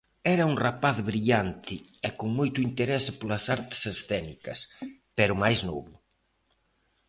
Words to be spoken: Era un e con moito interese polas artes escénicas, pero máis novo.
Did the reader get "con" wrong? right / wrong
right